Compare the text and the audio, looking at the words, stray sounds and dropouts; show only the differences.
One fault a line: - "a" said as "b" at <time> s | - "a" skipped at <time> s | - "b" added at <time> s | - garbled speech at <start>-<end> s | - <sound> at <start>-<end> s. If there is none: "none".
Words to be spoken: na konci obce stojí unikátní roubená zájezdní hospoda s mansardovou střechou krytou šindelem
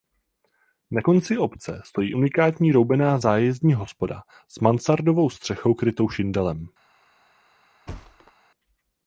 - thud at 7.9-8.3 s